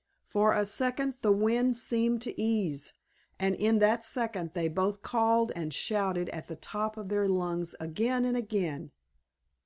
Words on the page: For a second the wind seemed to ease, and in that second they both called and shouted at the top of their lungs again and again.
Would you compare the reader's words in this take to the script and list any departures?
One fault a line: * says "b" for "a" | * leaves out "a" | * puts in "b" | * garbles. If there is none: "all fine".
all fine